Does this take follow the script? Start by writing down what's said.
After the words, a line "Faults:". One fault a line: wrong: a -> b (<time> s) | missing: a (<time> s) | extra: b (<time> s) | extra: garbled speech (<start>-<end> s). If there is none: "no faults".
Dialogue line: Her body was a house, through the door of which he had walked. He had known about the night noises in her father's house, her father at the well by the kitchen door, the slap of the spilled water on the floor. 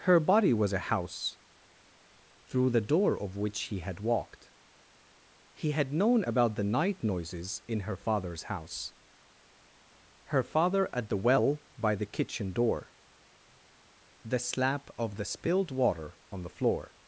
Her body was a house, through the door of which he had walked. He had known about the night noises in her father's house, her father at the well by the kitchen door, the slap of the spilled water on the floor.
Faults:
no faults